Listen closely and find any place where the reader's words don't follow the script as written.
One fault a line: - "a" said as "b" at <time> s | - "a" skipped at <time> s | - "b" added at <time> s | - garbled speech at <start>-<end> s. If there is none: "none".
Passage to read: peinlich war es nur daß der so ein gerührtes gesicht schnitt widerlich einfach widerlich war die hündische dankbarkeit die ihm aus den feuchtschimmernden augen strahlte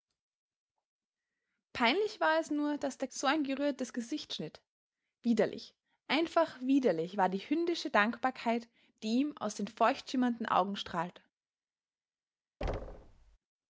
none